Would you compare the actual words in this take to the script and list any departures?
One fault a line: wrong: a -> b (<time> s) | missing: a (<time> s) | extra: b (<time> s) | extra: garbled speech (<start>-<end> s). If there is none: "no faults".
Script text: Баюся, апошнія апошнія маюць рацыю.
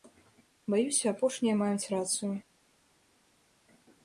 missing: апошнія (1.6 s)